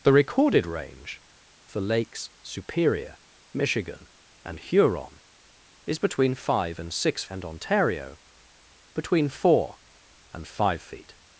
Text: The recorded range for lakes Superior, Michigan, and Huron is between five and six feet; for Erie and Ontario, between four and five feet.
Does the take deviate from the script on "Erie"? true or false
true